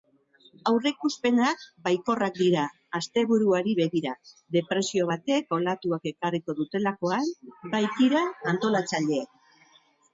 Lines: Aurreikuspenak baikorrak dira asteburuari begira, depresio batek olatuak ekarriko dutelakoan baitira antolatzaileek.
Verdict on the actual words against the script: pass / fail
pass